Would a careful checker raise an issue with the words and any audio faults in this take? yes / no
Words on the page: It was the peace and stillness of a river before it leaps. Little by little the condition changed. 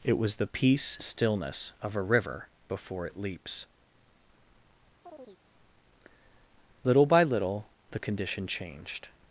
yes